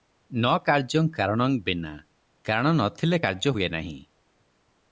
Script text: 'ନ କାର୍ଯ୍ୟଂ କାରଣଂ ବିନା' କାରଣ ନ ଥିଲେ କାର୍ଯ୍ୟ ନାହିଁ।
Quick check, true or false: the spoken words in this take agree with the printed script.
false